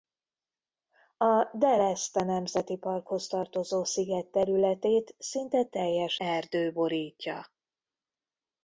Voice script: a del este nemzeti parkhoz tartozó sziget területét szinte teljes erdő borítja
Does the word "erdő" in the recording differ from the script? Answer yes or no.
no